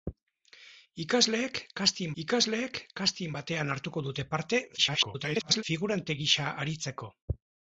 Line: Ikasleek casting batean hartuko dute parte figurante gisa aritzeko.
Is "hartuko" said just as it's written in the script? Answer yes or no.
yes